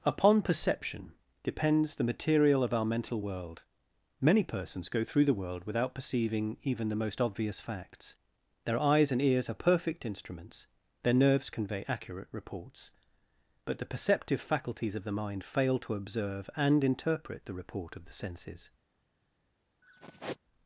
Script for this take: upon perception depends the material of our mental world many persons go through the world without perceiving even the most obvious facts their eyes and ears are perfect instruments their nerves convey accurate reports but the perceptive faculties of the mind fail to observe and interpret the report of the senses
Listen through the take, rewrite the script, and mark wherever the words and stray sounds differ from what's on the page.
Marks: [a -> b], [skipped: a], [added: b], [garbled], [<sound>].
upon perception depends the material of our mental world many persons go through the world without perceiving even the most obvious facts their eyes and ears are perfect instruments their nerves convey accurate reports but the perceptive faculties of the mind fail to observe and interpret the report of the senses [sigh]